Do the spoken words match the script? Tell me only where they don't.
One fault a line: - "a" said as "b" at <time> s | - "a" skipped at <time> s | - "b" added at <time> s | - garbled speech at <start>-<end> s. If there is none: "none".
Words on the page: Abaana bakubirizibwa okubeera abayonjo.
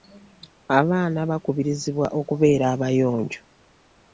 none